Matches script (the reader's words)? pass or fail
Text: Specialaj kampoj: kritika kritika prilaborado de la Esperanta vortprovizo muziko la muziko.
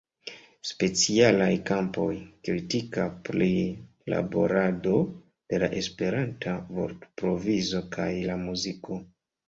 fail